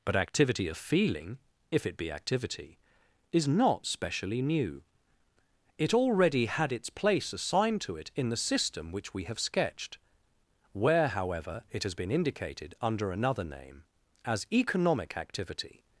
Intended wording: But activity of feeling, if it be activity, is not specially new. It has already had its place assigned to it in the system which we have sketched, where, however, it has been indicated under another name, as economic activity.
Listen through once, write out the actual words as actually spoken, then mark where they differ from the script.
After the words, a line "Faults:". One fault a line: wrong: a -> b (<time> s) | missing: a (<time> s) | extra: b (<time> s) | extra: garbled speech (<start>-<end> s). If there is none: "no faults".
But activity of feeling, if it be activity, is not specially new. It already had its place assigned to it in the system which we have sketched, where, however, it has been indicated under another name, as economic activity.
Faults:
missing: has (5.9 s)